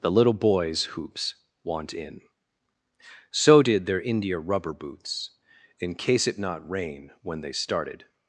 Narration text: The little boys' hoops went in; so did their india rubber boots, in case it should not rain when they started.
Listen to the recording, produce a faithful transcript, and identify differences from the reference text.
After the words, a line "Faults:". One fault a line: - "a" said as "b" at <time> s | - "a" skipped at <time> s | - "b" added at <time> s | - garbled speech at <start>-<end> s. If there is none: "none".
The little boys' hoops want in; so did their india rubber boots, in case it not rain when they started.
Faults:
- "went" said as "want" at 1.6 s
- "should" skipped at 6.4 s